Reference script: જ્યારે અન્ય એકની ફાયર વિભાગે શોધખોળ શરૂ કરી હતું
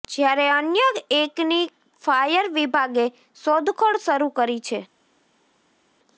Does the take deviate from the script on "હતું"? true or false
true